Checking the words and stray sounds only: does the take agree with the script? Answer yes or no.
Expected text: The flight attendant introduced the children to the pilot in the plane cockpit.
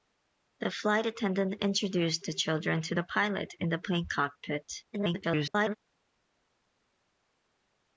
no